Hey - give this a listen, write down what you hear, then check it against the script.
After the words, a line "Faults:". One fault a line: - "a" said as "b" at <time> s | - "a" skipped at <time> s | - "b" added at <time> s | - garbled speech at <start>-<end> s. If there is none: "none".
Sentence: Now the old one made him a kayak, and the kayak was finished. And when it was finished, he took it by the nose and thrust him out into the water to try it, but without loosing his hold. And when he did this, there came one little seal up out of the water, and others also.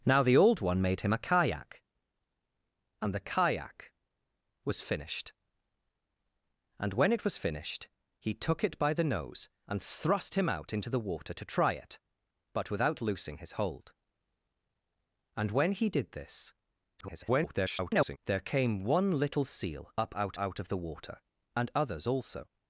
Now the old one made him a kayak, and the kayak was finished. And when it was finished, he took it by the nose and thrust him out into the water to try it, but without loosing his hold. And when he did this, [garbled] there came one little seal up out out of the water, and others also.
Faults:
- garbled speech at 17.0-18.2 s
- "out" added at 20.4 s